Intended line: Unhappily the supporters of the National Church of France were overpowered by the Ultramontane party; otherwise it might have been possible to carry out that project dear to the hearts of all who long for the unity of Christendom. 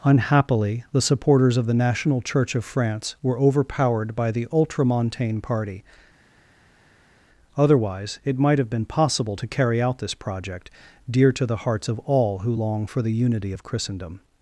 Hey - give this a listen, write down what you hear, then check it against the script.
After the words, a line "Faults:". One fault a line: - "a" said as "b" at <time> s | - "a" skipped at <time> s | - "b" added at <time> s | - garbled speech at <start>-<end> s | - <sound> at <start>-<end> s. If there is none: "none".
Unhappily the supporters of the National Church of France were overpowered by the Ultramontane party; otherwise it might have been possible to carry out this project dear to the hearts of all who long for the unity of Christendom.
Faults:
- "that" said as "this" at 10.0 s